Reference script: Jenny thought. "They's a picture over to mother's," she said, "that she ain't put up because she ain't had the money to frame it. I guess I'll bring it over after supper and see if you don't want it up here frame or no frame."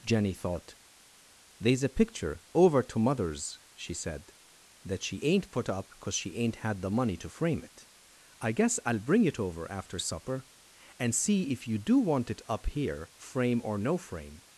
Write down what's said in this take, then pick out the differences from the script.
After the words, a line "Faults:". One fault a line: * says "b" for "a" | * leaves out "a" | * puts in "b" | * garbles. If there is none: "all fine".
Jenny thought. "They's a picture over to mother's," she said, "that she ain't put up because she ain't had the money to frame it. I guess I'll bring it over after supper and see if you do want it up here frame or no frame."
Faults:
* says "do" for "don't"